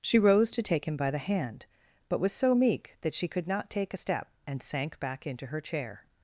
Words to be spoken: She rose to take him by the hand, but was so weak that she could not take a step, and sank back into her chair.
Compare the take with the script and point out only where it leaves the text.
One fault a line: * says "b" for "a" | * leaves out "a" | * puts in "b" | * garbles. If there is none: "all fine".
* says "meek" for "weak"